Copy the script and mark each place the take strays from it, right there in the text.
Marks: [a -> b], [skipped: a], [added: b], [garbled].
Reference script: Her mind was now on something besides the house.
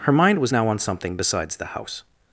Her mind was now on something besides the house.